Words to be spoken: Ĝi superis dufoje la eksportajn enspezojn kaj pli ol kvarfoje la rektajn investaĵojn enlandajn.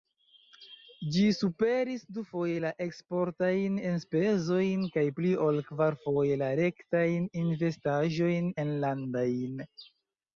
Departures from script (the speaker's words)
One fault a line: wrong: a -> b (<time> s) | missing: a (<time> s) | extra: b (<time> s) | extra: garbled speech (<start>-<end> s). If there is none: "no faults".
no faults